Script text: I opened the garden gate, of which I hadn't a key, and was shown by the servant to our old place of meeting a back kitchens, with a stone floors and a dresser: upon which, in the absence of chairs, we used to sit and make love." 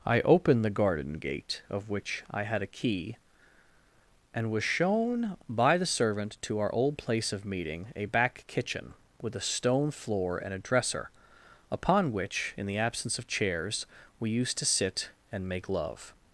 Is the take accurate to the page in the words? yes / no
no